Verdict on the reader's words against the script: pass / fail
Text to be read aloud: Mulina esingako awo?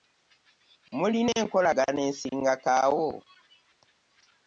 fail